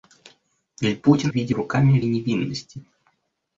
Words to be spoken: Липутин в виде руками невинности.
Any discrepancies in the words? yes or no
no